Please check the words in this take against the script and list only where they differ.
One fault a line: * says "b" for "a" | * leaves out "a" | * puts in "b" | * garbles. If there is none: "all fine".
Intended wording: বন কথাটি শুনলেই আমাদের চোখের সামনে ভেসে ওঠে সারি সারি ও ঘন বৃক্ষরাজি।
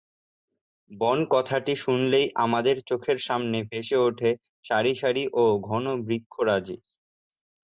all fine